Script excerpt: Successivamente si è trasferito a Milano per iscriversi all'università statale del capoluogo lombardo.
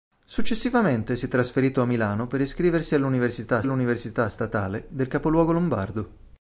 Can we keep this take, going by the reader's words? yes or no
no